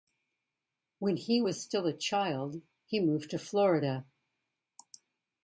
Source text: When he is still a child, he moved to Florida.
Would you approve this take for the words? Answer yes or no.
no